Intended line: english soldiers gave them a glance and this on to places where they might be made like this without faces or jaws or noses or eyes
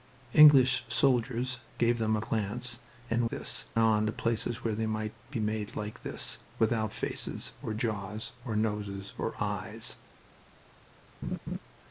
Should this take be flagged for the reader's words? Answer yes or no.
no